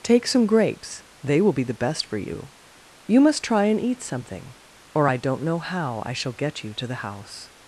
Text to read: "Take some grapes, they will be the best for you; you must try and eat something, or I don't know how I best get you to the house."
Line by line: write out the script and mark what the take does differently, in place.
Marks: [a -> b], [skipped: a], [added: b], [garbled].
"Take some grapes, they will be the best for you; you must try and eat something, or I don't know how I [best -> shall] get you to the house."